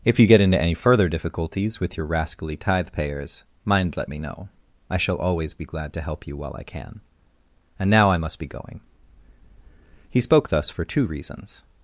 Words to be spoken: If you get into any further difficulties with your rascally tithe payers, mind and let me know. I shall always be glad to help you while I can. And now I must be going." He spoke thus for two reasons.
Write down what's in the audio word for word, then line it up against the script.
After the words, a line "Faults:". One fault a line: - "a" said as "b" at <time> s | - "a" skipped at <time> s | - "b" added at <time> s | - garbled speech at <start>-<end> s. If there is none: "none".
If you get into any further difficulties with your rascally tithe payers, mind let me know. I shall always be glad to help you while I can. And now I must be going." He spoke thus for two reasons.
Faults:
- "and" skipped at 4.0 s